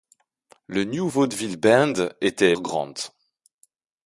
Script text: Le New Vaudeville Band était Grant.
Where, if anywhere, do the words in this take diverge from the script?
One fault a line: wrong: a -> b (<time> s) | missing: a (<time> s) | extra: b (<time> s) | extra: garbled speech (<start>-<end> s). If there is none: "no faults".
no faults